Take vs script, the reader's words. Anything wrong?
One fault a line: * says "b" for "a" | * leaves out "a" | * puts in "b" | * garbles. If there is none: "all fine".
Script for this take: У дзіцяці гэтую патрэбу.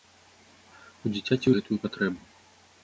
all fine